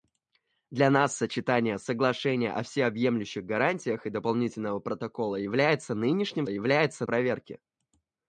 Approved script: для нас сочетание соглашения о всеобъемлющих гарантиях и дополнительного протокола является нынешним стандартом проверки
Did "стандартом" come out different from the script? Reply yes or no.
yes